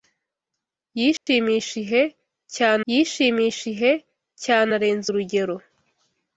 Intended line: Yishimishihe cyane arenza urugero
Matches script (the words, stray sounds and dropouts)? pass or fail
fail